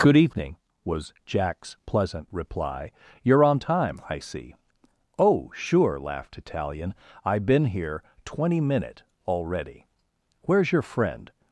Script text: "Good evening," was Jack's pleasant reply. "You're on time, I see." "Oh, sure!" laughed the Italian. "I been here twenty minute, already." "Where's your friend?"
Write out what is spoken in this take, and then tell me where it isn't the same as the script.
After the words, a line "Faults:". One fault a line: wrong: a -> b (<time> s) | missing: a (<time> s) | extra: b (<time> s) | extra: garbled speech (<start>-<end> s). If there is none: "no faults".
"Good evening," was Jack's pleasant reply. "You're on time, I see." "Oh, sure!" laughed Italian. "I been here twenty minute, already." "Where's your friend?"
Faults:
missing: the (6.4 s)